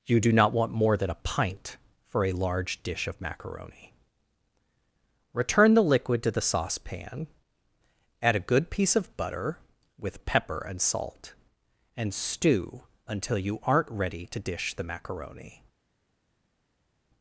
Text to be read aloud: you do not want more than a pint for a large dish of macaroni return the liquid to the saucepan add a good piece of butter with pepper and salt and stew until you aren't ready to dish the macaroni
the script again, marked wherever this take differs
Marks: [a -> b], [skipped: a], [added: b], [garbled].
you do not want more than a pint for a large dish of macaroni return the liquid to the saucepan add a good piece of butter with pepper and salt and stew until you aren't ready to dish the macaroni